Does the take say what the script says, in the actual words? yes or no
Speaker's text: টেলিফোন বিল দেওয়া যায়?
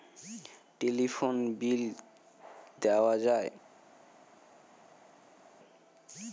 yes